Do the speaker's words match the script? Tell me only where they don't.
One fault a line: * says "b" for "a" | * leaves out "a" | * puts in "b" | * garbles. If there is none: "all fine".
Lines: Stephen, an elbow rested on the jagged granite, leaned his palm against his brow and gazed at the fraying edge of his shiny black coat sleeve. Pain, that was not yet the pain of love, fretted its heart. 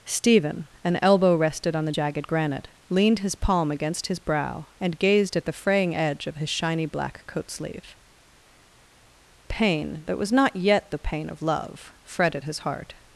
* says "his" for "its"